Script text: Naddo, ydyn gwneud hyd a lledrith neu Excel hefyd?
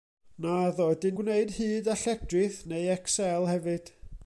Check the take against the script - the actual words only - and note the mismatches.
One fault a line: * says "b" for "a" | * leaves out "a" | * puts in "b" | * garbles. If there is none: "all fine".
all fine